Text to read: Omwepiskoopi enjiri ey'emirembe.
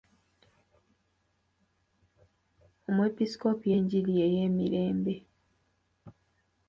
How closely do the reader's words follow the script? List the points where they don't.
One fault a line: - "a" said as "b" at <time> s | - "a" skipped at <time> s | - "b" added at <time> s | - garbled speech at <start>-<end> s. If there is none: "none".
none